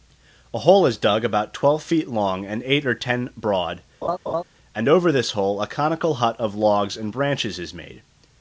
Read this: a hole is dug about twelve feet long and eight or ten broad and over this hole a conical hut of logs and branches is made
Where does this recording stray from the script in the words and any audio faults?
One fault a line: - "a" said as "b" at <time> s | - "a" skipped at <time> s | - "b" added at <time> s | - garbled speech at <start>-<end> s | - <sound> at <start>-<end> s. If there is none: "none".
- laugh at 4.0-4.4 s